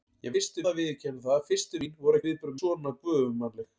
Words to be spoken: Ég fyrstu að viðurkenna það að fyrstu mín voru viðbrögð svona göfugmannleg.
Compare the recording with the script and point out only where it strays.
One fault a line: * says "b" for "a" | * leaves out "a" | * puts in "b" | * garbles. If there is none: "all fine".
all fine